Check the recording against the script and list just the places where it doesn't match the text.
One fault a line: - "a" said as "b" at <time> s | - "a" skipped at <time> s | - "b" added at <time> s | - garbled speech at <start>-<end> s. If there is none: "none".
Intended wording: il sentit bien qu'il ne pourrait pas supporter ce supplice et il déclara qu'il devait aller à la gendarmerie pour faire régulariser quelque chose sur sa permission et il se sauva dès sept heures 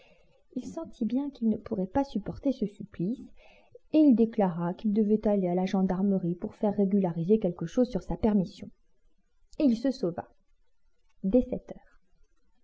none